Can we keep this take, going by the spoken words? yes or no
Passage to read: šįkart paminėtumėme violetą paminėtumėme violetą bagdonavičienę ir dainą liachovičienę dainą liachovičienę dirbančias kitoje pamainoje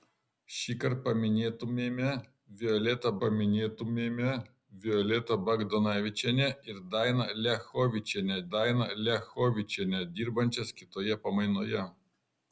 yes